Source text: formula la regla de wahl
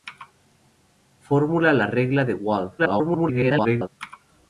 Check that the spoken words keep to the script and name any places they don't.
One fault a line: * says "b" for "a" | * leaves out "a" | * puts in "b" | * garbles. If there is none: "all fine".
* garbles